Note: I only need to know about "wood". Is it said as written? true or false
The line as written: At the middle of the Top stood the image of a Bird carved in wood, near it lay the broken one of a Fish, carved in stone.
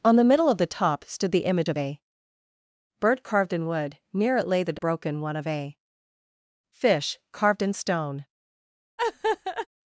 true